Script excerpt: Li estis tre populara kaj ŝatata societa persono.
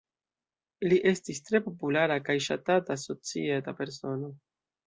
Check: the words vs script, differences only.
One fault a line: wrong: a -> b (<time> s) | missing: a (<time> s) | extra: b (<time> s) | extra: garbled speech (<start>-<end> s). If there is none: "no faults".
no faults